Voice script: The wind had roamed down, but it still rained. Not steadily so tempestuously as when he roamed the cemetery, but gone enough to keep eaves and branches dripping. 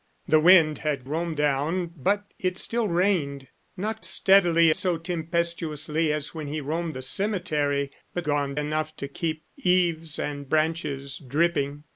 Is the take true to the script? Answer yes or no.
yes